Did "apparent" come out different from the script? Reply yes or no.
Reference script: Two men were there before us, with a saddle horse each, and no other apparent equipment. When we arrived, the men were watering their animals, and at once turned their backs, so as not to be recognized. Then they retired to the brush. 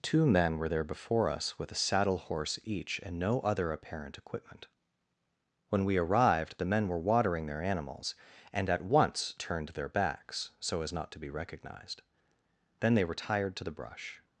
no